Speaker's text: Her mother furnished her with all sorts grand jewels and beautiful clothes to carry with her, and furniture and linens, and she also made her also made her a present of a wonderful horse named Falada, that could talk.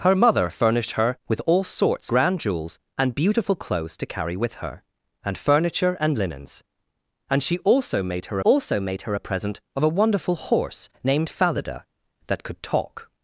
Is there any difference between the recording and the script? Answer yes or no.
no